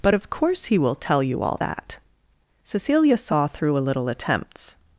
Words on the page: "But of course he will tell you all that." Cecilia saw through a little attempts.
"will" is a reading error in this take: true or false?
false